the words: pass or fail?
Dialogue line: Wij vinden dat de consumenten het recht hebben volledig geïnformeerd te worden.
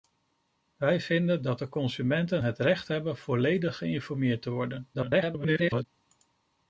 fail